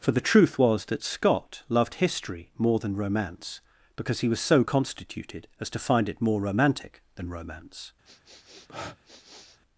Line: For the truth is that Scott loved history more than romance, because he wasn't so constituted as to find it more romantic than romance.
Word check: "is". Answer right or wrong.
wrong